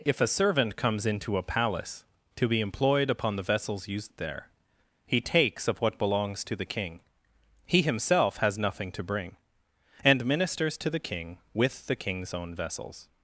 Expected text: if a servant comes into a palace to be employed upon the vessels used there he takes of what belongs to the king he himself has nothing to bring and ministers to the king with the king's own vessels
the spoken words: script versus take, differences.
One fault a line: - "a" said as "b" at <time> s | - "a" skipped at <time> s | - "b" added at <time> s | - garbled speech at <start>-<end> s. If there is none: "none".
none